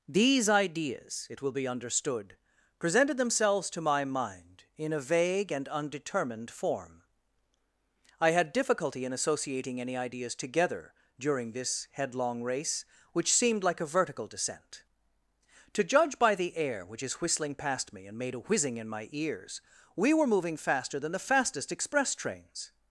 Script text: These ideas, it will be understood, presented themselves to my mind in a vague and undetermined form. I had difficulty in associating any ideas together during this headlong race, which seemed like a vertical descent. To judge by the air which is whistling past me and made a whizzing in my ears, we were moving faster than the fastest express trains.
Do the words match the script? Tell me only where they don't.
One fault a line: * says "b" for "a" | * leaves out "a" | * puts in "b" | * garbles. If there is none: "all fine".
all fine